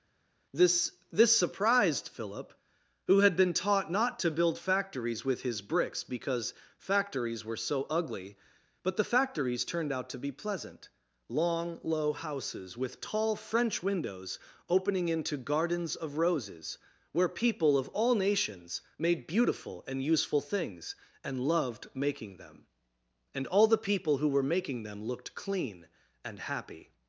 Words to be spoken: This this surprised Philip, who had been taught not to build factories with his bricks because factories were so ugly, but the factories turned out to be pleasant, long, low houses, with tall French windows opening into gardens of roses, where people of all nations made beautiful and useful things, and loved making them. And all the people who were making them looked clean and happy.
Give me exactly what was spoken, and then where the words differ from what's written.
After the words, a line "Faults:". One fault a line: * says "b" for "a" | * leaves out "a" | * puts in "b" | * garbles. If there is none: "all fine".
This this surprised Philip, who had been taught not to build factories with his bricks because factories were so ugly, but the factories turned out to be pleasant, long, low houses, with tall French windows opening into gardens of roses, where people of all nations made beautiful and useful things, and loved making them. And all the people who were making them looked clean and happy.
Faults:
all fine